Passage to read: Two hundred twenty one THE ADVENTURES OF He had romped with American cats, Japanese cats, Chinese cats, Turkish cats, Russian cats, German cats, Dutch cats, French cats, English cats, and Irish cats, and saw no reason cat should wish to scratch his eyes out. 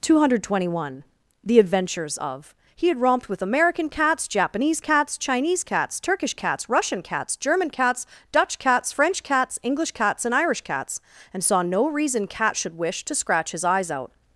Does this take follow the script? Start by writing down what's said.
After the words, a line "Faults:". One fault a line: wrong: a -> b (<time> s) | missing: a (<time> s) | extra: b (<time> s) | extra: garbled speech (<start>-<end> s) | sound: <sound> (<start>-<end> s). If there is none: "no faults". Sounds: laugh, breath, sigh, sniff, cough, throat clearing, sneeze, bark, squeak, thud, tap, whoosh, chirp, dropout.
Two hundred twenty one THE ADVENTURES OF He had romped with American cats, Japanese cats, Chinese cats, Turkish cats, Russian cats, German cats, Dutch cats, French cats, English cats, and Irish cats, and saw no reason cat should wish to scratch his eyes out.
Faults:
no faults